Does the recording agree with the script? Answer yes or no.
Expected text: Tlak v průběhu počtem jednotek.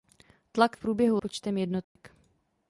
yes